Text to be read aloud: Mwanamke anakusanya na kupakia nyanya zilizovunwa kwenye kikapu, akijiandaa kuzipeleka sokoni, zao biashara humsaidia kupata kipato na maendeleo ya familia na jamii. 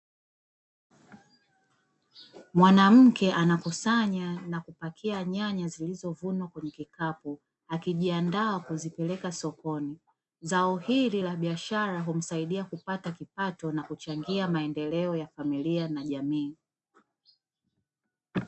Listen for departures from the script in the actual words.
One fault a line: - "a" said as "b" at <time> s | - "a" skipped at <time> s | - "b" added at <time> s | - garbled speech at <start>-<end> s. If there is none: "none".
- "hili la" added at 10.8 s
- "kuchangia" added at 13.8 s